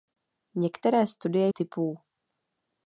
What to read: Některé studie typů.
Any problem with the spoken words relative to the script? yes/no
no